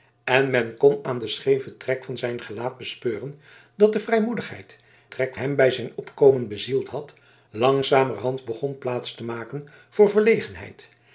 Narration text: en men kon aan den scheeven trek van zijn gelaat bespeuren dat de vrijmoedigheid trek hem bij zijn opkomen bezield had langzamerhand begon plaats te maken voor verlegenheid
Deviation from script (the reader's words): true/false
false